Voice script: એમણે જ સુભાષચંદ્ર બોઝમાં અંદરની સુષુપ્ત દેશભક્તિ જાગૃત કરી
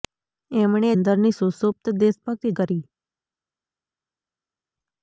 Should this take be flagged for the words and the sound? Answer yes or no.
yes